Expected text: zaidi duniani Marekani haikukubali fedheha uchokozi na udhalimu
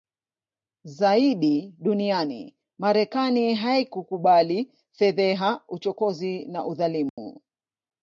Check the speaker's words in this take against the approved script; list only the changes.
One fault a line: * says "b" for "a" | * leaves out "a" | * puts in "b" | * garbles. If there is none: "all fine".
all fine